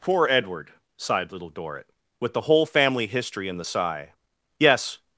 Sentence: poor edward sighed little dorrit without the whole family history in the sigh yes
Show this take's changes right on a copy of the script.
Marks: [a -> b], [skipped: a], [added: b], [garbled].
poor edward sighed little dorrit [without -> with] the whole family history in the sigh yes